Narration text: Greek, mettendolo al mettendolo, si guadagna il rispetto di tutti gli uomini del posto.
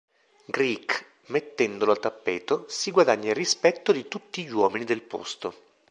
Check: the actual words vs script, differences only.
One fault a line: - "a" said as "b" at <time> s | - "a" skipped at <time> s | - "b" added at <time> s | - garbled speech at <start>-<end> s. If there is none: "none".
- "mettendolo" said as "tappeto" at 2.0 s